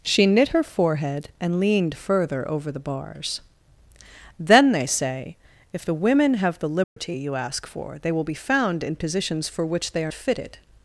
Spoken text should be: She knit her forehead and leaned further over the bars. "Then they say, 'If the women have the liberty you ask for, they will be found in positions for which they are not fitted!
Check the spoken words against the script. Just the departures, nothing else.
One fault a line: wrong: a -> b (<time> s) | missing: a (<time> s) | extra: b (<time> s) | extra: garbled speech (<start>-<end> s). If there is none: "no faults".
missing: not (10.1 s)